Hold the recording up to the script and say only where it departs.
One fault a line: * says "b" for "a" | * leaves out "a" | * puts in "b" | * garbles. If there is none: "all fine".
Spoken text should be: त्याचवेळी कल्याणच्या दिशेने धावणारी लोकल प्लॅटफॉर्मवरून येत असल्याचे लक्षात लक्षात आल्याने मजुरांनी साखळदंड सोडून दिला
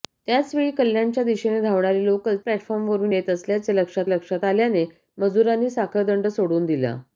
all fine